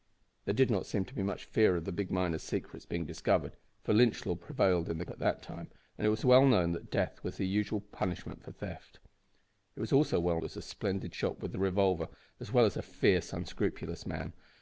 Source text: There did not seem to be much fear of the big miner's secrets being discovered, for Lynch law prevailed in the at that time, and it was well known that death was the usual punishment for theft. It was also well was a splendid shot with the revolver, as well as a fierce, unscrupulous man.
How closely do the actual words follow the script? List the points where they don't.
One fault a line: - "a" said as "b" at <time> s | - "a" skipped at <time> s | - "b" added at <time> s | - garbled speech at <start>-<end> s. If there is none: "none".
none